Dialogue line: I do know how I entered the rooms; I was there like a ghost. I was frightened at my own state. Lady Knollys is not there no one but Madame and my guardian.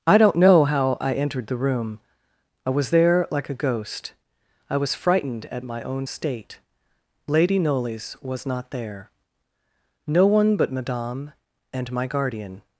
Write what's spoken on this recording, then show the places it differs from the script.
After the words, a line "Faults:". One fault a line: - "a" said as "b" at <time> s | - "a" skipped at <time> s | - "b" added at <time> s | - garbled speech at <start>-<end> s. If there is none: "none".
I don't know how I entered the room; I was there like a ghost. I was frightened at my own state. Lady Knollys was not there no one but Madame and my guardian.
Faults:
- "do" said as "don't" at 0.2 s
- "rooms" said as "room" at 1.6 s
- "is" said as "was" at 8.2 s